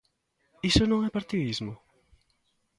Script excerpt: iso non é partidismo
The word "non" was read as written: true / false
true